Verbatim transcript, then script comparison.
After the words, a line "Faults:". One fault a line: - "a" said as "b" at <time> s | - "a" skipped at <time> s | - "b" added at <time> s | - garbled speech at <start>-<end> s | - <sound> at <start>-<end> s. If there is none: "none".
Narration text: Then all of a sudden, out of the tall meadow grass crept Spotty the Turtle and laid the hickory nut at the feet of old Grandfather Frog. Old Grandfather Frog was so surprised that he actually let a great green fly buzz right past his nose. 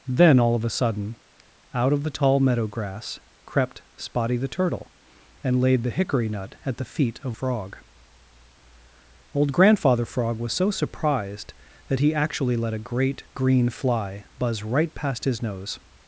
Then all of a sudden, out of the tall meadow grass crept Spotty the Turtle and laid the hickory nut at the feet of Frog. Old Grandfather Frog was so surprised that he actually let a great green fly buzz right past his nose.
Faults:
- "old Grandfather" skipped at 7.4 s